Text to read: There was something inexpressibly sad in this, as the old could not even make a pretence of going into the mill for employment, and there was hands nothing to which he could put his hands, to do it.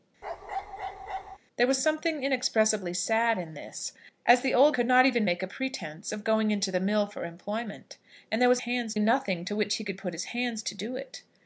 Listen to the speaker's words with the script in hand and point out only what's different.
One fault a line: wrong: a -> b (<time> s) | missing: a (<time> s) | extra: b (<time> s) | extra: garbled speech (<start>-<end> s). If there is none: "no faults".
no faults